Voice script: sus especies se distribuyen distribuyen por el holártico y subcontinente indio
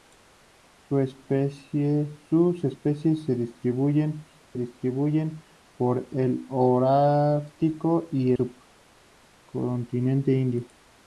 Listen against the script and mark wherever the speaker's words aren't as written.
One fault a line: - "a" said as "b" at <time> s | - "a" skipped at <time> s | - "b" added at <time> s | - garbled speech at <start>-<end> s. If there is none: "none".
none